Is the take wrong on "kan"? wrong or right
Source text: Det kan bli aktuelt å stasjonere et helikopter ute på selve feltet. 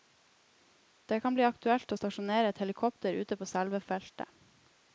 right